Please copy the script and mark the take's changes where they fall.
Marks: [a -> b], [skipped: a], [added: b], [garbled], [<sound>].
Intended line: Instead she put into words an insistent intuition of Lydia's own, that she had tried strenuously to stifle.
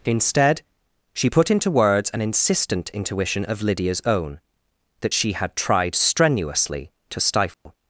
Instead she put into words an insistent intuition of Lydia's own, that she had tried strenuously to stifle. [dropout]